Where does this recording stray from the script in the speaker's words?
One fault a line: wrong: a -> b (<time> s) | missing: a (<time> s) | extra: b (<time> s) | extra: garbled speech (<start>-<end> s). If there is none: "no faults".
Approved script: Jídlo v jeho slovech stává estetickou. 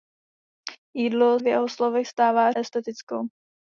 no faults